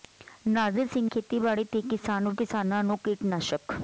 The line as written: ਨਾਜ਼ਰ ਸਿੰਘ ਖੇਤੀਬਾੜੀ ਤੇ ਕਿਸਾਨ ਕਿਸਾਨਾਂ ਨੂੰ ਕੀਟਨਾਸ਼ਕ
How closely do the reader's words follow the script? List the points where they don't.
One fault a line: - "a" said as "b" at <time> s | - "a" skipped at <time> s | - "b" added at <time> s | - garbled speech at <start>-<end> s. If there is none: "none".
none